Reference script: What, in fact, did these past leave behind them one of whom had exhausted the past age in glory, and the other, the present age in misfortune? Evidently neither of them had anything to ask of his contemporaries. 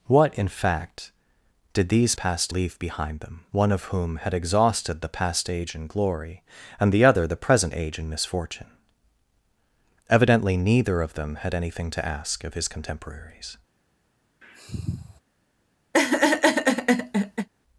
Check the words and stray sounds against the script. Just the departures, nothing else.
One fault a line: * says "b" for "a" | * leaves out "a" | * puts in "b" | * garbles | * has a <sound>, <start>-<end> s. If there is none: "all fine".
* has a sniff, 14.4-15.2 s
* has a laugh, 15.9-17.5 s